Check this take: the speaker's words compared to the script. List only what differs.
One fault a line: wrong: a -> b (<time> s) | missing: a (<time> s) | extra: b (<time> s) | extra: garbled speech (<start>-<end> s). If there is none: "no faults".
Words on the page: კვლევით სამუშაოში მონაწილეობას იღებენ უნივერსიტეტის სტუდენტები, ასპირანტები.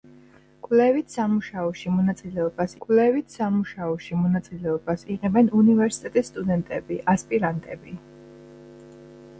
extra: კვლევით სამუშაოში მონაწილეობას (2.8 s)